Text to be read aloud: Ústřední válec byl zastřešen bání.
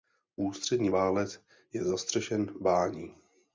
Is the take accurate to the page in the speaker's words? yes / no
no